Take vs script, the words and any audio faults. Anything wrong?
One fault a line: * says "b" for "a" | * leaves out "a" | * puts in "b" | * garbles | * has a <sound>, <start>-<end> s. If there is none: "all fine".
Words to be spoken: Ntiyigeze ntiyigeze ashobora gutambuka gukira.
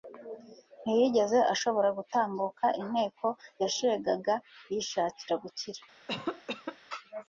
* leaves out "ntiyigeze"
* puts in "inteko yashegaga yishakira"
* has a cough, 6.1-6.8 s